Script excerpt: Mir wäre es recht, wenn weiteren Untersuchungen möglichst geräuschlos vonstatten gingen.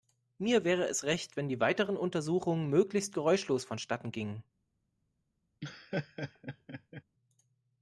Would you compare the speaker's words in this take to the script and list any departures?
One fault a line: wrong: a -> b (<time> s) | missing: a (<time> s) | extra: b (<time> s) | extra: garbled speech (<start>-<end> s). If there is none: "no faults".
extra: die (1.5 s)